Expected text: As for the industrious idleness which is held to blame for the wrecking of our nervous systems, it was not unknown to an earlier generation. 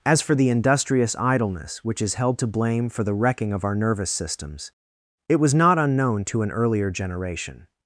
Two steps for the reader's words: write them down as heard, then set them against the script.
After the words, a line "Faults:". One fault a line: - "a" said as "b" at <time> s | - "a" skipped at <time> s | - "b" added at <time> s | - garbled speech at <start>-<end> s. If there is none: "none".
As for the industrious idleness which is held to blame for the wrecking of our nervous systems, it was not unknown to an earlier generation.
Faults:
none